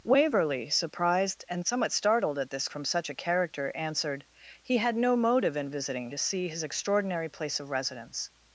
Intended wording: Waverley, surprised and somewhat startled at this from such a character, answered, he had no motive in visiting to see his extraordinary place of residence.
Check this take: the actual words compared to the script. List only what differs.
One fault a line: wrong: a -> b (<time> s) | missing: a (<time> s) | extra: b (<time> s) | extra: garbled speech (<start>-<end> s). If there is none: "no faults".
no faults